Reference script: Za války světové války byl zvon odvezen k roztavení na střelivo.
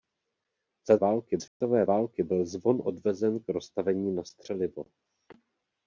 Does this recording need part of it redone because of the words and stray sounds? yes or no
yes